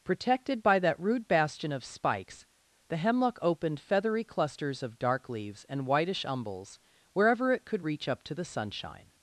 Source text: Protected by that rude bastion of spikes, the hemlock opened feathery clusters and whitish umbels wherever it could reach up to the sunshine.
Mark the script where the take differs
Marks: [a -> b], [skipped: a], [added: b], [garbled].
Protected by that rude bastion of spikes, the hemlock opened feathery clusters [added: of dark leaves] and whitish umbels wherever it could reach up to the sunshine.